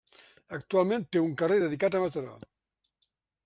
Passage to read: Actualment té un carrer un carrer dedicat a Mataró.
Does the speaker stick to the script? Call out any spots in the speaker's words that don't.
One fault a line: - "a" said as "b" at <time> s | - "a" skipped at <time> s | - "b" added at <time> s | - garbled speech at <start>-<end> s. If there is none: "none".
- "un carrer" skipped at 1.6 s